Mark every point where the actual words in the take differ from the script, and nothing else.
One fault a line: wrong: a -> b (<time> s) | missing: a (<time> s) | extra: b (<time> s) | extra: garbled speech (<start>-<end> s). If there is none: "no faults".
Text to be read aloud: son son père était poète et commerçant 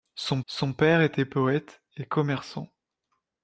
no faults